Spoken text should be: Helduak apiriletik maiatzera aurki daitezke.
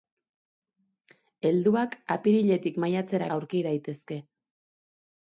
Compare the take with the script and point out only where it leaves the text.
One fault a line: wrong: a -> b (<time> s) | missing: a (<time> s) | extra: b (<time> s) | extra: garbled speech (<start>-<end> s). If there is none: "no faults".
no faults